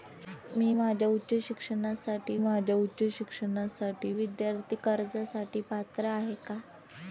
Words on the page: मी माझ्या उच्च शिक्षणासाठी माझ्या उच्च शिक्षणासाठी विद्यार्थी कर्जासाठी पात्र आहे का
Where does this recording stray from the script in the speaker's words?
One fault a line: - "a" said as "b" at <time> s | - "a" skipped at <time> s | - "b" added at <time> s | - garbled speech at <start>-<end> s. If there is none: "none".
none